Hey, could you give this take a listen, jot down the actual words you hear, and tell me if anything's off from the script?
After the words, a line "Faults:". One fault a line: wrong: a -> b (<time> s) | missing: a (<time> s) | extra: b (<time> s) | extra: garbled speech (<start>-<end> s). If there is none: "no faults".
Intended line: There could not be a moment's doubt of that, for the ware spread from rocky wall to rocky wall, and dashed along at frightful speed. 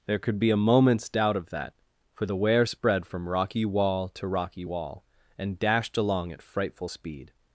There could be a moment's doubt of that, for the ware spread from rocky wall to rocky wall, and dashed along at frightful speed.
Faults:
missing: not (0.4 s)